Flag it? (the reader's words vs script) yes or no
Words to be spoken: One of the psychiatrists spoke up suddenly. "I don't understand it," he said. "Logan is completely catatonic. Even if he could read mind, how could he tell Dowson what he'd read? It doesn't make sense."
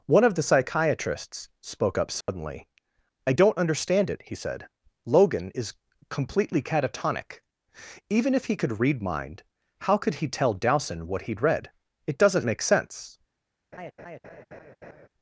no